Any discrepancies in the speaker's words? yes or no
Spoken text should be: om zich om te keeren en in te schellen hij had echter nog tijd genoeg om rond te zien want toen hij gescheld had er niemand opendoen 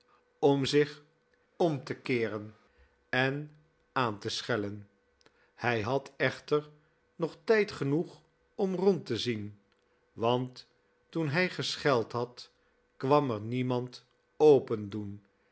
yes